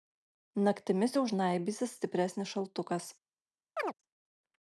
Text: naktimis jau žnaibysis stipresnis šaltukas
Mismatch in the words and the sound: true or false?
true